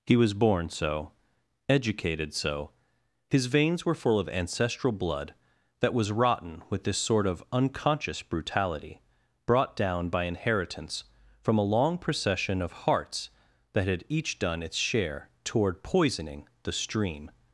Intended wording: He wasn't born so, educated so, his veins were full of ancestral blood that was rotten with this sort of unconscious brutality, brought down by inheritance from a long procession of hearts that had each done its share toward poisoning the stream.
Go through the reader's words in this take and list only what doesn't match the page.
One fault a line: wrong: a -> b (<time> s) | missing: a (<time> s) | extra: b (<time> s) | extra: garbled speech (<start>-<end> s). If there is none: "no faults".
wrong: wasn't -> was (0.1 s)